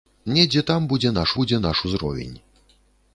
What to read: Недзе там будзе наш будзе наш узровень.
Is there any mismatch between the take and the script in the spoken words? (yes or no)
no